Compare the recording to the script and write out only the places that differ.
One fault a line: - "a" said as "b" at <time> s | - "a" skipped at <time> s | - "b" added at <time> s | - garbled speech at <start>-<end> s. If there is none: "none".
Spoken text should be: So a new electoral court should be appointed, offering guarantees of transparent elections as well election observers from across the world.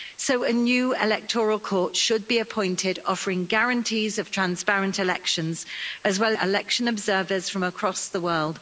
none